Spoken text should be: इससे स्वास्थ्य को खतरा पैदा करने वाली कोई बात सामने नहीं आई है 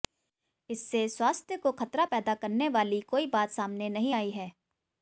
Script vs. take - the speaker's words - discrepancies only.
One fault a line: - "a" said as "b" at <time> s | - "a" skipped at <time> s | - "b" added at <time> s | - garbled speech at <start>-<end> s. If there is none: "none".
none